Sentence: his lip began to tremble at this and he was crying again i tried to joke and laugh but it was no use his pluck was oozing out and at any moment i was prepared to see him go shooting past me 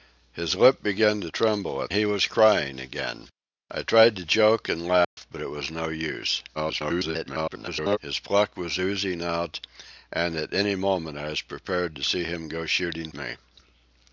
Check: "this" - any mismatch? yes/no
yes